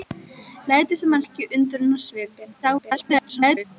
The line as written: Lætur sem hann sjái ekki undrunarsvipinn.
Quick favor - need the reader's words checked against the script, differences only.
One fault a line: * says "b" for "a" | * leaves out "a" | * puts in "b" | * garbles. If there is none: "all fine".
* leaves out "sjái"
* garbles